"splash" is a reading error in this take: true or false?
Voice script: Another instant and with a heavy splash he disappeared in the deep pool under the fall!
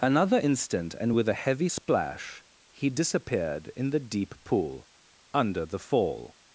false